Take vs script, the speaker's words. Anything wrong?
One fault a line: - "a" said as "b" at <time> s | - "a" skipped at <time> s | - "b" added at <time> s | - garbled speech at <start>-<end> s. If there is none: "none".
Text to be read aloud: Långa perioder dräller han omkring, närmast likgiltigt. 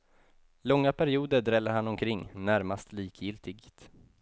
none